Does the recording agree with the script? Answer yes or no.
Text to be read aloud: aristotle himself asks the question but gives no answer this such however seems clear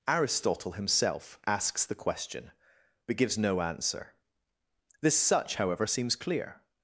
yes